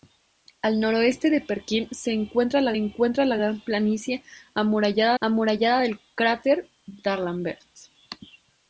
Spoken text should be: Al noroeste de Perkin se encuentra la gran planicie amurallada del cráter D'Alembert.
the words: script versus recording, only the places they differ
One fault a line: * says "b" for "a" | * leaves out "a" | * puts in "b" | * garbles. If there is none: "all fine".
* puts in "encuentra la"
* puts in "amurallada"